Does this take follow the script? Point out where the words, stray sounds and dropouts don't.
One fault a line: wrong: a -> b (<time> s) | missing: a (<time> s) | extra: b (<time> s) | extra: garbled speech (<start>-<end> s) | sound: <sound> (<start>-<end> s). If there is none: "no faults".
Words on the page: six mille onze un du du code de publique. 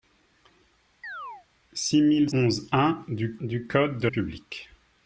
sound: chirp (1.0-1.5 s)